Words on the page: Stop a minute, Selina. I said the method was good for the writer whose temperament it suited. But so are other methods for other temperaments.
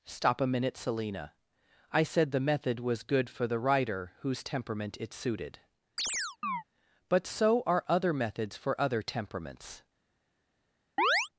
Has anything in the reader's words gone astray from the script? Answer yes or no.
no